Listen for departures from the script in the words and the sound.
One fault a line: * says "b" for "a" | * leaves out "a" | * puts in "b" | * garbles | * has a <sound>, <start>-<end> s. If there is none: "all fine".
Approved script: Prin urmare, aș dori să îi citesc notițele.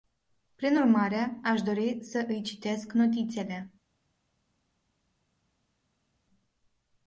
all fine